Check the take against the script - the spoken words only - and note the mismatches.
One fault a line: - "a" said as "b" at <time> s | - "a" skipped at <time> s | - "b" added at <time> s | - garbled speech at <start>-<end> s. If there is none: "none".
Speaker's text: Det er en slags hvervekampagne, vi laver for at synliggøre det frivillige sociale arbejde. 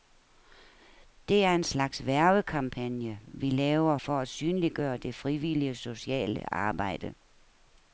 none